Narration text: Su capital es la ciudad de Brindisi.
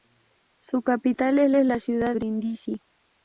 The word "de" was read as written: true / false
false